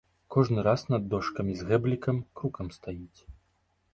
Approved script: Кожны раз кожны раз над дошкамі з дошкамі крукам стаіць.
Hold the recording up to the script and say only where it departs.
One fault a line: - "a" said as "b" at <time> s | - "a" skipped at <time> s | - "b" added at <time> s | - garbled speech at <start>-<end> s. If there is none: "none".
- "кожны раз" skipped at 0.8 s
- "дошкамі" said as "гэблікам" at 1.7 s